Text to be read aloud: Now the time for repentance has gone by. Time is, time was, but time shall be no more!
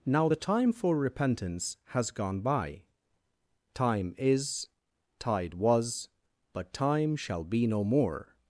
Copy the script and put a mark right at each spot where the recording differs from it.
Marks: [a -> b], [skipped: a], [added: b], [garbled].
Now the time for repentance has gone by. Time is, [time -> tide] was, but time shall be no more!